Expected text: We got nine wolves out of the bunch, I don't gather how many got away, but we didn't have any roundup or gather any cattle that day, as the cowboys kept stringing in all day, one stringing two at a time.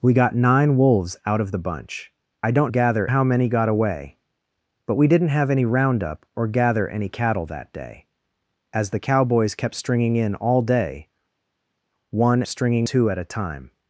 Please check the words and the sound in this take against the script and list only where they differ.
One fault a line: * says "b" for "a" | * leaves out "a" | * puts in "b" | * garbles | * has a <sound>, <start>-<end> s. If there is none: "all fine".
all fine